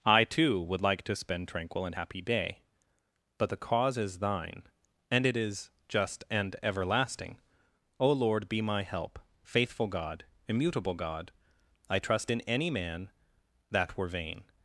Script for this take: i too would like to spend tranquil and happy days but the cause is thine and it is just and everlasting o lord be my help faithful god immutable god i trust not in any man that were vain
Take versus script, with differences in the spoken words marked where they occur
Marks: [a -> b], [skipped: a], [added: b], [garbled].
i too would like to spend tranquil and happy [days -> day] but the cause is thine and it is just and everlasting o lord be my help faithful god immutable god i trust [skipped: not] in any man that were vain